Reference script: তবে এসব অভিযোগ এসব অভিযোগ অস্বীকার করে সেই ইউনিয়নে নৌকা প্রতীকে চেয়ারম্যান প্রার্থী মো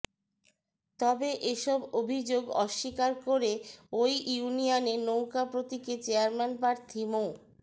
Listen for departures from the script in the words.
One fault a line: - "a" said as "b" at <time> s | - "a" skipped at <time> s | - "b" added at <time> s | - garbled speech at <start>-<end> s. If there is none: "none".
- "এসব অভিযোগ" skipped at 2.4 s
- "সেই" said as "ওই" at 3.9 s